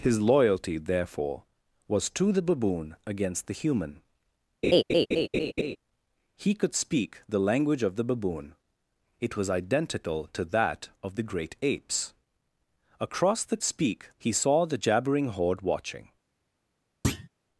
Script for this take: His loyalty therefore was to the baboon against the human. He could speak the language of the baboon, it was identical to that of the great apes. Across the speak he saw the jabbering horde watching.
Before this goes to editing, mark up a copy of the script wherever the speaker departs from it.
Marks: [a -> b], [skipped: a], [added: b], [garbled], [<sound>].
His loyalty therefore was to the baboon against the human. [laugh] He could speak the language of the baboon, it was identical to that of the great apes. Across the speak he saw the jabbering horde watching. [thud]